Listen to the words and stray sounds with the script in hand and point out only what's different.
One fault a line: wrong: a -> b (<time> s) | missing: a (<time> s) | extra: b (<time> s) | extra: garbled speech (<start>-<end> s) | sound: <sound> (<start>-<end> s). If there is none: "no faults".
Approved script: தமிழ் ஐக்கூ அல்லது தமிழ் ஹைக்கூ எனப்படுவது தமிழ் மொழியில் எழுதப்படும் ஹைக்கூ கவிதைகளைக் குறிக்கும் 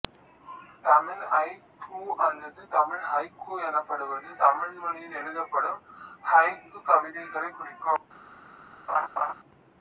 sound: laugh (8.9-9.3 s)